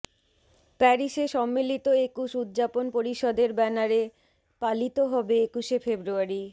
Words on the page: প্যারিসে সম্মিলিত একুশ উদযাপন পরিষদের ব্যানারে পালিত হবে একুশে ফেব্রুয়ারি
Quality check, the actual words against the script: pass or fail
pass